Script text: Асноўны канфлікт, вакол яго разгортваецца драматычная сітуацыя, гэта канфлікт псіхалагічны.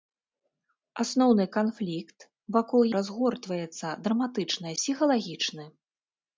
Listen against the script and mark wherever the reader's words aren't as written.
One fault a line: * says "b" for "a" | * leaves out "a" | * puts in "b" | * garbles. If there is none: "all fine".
* leaves out "яго"
* leaves out "сітуацыя гэта канфлікт"